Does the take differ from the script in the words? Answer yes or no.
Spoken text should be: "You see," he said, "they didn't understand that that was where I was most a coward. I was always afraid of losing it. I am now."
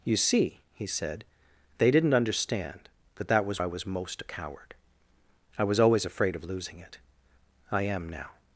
yes